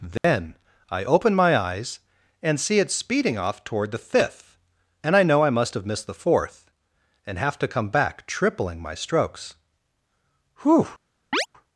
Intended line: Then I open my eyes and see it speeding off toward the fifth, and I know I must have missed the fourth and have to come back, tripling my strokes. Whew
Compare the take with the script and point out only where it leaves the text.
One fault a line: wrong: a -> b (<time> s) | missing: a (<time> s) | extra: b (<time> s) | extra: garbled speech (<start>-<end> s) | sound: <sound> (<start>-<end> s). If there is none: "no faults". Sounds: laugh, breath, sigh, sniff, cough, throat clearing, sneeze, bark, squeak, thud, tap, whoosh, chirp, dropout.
sound: dropout (0.2-0.2 s)
sound: chirp (11.3-11.5 s)